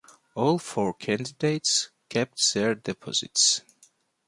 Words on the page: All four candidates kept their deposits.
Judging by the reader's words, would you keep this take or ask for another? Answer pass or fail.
pass